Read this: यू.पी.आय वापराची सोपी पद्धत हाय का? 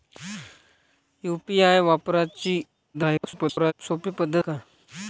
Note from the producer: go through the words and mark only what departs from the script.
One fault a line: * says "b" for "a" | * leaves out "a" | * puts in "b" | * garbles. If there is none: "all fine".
* garbles
* leaves out "हाय"